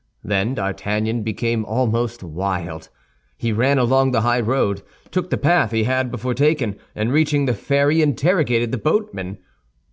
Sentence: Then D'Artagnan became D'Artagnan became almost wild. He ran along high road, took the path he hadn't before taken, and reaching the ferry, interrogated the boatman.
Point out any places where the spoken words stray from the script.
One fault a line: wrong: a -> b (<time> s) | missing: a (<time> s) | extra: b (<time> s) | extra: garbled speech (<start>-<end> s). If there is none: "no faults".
missing: D'Artagnan became (1.7 s)
extra: the (4.1 s)
wrong: hadn't -> had (5.8 s)